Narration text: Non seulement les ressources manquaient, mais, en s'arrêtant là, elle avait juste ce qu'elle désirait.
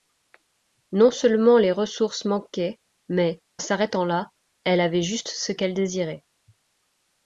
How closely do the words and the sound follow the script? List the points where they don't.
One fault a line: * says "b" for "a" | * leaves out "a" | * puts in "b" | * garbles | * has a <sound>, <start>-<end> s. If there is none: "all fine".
* leaves out "en"